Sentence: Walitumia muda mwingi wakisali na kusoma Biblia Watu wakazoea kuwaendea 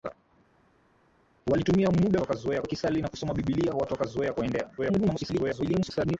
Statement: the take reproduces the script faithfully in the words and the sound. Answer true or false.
false